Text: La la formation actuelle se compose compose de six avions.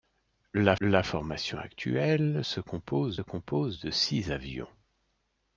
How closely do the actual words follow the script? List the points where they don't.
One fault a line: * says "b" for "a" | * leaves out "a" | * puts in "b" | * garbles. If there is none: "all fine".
all fine